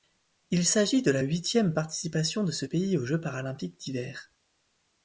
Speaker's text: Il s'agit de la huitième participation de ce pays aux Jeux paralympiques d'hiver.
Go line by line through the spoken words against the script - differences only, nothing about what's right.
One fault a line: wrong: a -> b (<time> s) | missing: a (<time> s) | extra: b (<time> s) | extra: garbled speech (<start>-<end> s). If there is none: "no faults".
no faults